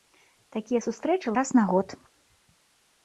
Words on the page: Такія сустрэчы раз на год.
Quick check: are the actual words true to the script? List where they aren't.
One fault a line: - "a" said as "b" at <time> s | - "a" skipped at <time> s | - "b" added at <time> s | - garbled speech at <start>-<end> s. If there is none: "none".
none